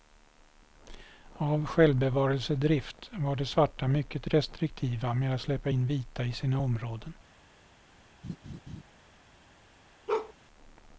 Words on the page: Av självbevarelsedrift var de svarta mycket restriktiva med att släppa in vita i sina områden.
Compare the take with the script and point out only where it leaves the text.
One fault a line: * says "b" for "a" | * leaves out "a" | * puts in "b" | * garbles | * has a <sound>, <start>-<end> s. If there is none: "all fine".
* has a laugh, 8.2-8.8 s
* has a bark, 10.1-10.3 s